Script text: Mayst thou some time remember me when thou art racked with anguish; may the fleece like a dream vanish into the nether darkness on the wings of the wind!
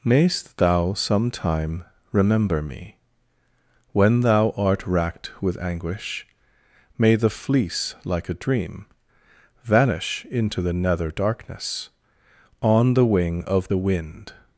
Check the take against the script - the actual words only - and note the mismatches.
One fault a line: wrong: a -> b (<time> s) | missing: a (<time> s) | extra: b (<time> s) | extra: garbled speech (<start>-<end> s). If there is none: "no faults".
wrong: wings -> wing (13.1 s)